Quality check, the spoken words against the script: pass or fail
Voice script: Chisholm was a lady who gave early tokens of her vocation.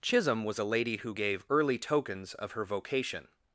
pass